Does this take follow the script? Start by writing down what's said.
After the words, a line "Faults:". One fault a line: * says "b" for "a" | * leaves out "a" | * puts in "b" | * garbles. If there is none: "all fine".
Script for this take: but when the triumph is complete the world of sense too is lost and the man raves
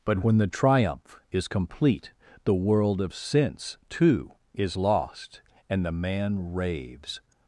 but when the triumph is complete the world of sense too is lost and the man raves
Faults:
all fine